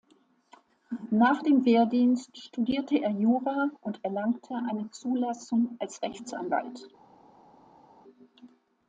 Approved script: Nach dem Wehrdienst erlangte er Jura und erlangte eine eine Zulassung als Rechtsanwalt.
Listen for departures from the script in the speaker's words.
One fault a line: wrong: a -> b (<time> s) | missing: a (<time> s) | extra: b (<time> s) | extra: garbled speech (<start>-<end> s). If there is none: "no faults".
wrong: erlangte -> studierte (2.4 s)
missing: eine (4.9 s)